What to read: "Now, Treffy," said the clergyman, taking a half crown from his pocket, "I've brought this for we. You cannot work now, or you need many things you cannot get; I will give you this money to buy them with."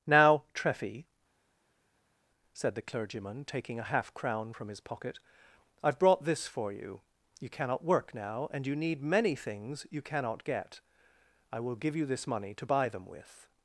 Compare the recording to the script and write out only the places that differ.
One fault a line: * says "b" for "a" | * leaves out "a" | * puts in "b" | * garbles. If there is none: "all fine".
* says "you" for "we"
* says "and" for "or"